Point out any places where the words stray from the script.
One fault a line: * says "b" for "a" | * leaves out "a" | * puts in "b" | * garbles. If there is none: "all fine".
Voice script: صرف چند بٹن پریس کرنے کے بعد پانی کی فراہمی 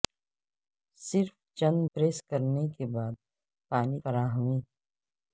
* leaves out "بٹن"
* leaves out "کی"